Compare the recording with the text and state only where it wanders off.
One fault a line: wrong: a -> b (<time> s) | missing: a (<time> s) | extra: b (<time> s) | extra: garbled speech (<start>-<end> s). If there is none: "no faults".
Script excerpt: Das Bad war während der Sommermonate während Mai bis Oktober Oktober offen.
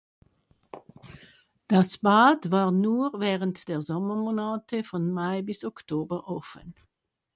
extra: nur (2.7 s)
wrong: während -> von (4.8 s)
missing: Oktober (6.3 s)